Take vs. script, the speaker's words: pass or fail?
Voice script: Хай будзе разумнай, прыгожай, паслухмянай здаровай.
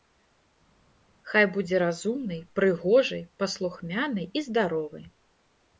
fail